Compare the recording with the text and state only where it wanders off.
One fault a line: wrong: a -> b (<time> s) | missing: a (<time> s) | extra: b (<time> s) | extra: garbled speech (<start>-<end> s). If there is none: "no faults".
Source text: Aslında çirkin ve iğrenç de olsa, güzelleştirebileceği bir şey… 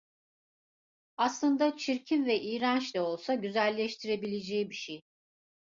no faults